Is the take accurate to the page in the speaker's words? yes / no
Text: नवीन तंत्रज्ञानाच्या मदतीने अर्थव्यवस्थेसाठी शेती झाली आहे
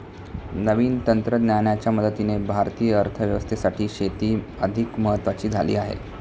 no